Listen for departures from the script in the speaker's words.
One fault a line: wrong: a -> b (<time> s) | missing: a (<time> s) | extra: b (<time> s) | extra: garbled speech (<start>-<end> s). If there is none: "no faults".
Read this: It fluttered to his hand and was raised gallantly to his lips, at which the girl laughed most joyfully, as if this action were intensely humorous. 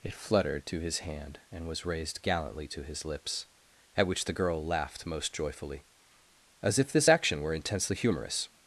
no faults